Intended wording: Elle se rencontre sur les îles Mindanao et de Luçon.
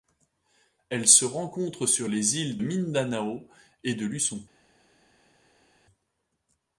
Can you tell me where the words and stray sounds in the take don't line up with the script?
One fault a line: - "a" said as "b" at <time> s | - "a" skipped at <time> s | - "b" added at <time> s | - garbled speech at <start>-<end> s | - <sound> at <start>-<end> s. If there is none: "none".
none